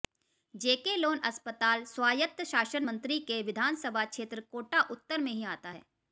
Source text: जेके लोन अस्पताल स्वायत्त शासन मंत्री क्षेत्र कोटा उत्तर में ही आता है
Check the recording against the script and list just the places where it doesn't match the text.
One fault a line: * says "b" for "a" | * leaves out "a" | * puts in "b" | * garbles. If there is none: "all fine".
* puts in "के विधानसभा"